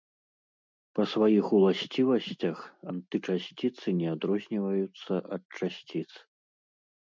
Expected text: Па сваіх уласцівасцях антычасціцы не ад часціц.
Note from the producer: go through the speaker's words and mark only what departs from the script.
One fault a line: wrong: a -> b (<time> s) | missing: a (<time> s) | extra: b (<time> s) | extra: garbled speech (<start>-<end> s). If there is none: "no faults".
extra: адрозніваюцца (4.1 s)